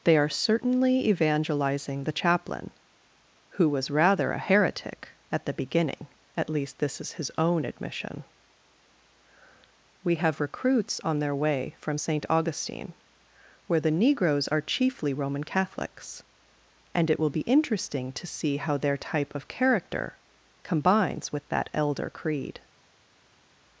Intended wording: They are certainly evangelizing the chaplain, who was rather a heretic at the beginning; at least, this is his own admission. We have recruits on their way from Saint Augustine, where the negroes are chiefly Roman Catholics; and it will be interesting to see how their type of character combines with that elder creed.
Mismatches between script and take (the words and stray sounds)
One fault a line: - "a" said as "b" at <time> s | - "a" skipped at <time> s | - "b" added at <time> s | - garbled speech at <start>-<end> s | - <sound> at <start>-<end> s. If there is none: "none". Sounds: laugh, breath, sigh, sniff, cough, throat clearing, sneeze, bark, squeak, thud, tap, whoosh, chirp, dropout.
none